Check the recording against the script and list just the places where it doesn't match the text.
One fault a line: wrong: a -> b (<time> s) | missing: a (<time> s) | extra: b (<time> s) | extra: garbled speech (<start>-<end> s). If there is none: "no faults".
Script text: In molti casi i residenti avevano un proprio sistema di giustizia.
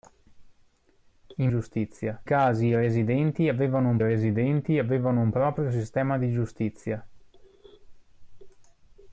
wrong: molti -> giustizia (1.5 s)
extra: residenti avevano un (4.0 s)